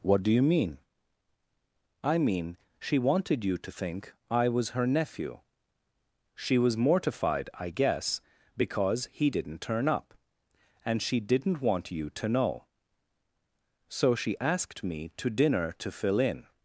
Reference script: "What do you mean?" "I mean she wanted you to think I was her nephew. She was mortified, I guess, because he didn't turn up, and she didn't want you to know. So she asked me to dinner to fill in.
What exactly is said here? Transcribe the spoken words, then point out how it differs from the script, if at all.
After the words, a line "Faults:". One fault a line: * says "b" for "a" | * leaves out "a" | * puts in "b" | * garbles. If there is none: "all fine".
"What do you mean?" "I mean she wanted you to think I was her nephew. She was mortified, I guess, because he didn't turn up, and she didn't want you to know. So she asked me to dinner to fill in.
Faults:
all fine